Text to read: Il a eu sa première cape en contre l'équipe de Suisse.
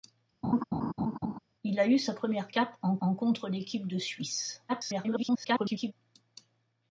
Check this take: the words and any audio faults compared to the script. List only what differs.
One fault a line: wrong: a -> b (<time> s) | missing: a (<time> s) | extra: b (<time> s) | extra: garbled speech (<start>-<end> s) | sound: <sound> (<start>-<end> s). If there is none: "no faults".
sound: laugh (0.4-1.4 s)
extra: en (3.0 s)
extra: garbled speech (4.7-5.9 s)